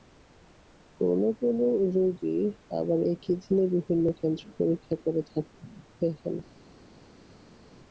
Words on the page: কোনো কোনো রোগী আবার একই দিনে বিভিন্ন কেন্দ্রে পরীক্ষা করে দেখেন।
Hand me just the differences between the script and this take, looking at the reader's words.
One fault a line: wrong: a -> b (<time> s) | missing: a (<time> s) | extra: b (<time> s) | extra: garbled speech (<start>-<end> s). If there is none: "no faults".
no faults